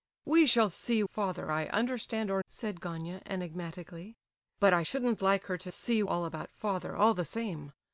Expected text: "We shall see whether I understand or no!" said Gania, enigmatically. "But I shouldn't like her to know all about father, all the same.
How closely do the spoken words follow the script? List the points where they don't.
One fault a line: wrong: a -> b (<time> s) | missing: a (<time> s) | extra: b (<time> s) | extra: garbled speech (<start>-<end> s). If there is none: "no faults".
wrong: whether -> father (1.1 s)
missing: no (2.4 s)
wrong: know -> see (5.7 s)